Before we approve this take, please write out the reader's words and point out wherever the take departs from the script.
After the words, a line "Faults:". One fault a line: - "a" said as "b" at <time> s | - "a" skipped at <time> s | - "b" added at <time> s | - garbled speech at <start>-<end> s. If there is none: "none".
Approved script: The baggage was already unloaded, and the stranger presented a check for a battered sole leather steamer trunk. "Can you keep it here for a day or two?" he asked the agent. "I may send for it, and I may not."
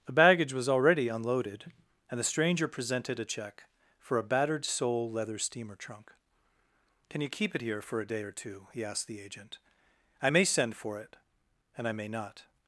The baggage was already unloaded, and the stranger presented a check for a battered sole leather steamer trunk. "Can you keep it here for a day or two?" he asked the agent. "I may send for it, and I may not."
Faults:
none